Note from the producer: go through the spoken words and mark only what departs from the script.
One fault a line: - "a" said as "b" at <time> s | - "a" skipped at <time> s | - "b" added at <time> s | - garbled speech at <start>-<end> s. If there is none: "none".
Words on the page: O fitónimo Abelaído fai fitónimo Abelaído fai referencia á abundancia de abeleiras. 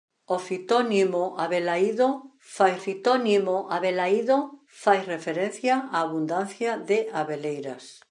none